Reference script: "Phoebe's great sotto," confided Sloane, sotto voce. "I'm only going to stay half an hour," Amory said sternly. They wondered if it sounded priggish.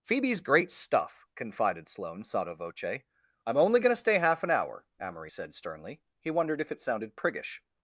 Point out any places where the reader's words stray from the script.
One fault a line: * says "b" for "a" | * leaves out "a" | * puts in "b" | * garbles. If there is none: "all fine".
* says "stuff" for "sotto"
* says "He" for "They"